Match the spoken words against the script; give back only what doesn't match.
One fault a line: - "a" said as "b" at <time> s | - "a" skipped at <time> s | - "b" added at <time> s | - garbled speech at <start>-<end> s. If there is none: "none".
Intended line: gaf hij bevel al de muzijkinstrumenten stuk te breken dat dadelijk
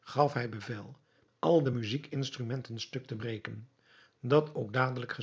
- "ook" added at 4.5 s